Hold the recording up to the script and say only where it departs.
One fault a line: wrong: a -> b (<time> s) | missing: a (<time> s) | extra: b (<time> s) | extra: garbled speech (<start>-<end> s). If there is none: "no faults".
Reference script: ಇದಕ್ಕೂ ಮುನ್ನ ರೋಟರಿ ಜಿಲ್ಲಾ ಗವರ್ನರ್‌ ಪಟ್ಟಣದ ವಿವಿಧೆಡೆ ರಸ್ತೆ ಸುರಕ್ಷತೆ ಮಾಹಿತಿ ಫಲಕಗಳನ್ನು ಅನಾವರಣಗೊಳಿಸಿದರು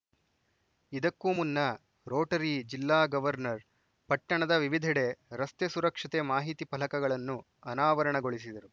no faults